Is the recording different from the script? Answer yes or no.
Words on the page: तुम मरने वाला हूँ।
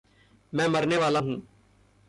yes